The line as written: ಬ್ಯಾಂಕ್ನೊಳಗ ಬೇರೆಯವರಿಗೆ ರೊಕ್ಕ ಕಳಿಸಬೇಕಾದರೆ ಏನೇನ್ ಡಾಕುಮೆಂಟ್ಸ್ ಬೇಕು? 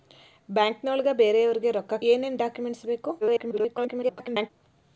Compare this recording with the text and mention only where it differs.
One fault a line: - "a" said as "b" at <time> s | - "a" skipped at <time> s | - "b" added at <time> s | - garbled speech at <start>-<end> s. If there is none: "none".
- "ಕಳಿಸಬೇಕಾದರೆ" skipped at 1.9 s
- garbled speech at 3.2-4.5 s